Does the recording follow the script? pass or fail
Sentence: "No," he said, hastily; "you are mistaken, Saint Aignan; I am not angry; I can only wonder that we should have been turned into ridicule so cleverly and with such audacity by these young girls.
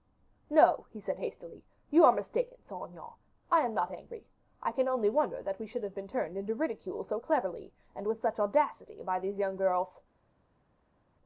pass